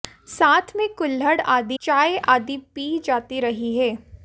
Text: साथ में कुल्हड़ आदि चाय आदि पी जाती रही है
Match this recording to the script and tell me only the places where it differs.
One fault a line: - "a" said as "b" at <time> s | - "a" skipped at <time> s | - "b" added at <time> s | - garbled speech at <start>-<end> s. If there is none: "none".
none